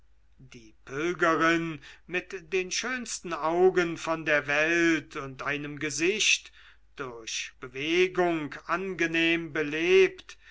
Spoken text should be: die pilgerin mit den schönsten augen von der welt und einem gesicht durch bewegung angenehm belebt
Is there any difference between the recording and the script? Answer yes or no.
no